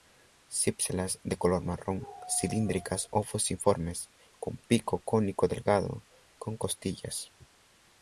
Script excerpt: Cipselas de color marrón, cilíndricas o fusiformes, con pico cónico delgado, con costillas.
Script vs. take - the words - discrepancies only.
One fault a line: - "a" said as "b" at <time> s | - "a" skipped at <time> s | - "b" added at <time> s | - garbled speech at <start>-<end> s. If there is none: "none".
none